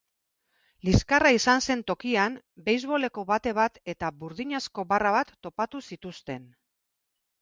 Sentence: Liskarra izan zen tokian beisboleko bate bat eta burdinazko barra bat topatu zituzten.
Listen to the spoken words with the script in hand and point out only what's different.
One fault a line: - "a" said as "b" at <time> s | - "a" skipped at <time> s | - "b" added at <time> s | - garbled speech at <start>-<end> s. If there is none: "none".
none